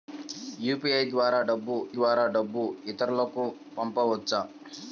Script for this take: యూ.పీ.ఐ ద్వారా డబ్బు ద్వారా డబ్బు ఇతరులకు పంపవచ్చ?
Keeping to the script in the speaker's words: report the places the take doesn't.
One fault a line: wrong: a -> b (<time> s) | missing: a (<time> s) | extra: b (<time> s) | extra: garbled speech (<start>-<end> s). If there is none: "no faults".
no faults